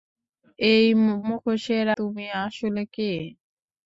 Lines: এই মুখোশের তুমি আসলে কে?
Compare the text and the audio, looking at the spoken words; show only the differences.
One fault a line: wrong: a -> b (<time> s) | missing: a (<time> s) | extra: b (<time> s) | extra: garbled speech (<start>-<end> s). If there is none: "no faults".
no faults